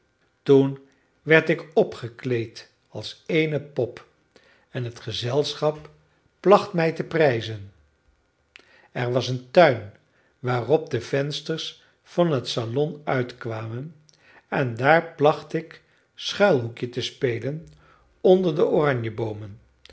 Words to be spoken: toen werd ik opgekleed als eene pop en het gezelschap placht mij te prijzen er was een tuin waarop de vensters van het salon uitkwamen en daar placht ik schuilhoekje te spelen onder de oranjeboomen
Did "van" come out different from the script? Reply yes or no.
no